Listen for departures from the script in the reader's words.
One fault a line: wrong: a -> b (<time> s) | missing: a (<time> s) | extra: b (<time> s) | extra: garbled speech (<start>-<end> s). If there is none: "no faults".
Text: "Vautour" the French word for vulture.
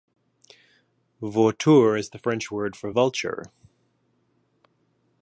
extra: is (1.9 s)